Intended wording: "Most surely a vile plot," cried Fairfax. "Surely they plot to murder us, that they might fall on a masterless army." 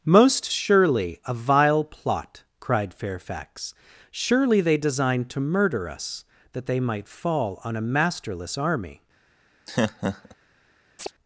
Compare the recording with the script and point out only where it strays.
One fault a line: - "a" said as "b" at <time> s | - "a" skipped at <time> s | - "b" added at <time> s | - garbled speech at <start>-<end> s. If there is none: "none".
- "plot" said as "designed" at 4.8 s